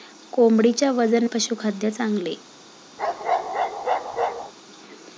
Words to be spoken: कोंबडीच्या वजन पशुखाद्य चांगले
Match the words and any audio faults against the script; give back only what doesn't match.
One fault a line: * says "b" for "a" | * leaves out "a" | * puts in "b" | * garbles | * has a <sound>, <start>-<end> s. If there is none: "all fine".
* has a bark, 3.0-4.5 s